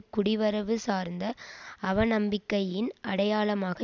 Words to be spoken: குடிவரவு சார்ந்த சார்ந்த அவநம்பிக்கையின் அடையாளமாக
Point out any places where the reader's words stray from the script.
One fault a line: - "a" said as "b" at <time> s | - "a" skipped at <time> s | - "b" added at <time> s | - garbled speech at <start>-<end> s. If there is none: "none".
- "சார்ந்த" skipped at 1.2 s